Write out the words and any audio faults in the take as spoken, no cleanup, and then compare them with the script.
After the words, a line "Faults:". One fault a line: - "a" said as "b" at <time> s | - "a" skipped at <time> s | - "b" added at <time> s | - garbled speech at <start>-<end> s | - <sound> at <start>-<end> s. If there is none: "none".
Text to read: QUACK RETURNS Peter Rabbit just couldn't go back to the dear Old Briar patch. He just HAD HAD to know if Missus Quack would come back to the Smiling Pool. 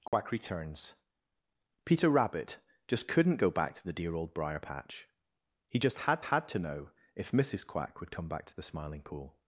QUACK RETURNS Peter Rabbit just couldn't go back to the dear Old Briar patch. He just HAD HAD to know if Missus Quack would come back to the Smiling Pool.
Faults:
- dropout at 0.1-0.1 s